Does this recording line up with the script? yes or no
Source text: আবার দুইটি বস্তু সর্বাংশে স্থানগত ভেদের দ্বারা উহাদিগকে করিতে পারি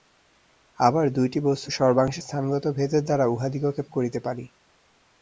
yes